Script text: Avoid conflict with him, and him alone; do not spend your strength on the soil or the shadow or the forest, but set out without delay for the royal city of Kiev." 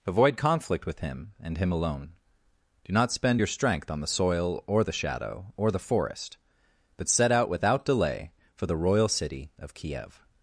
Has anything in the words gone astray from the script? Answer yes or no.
no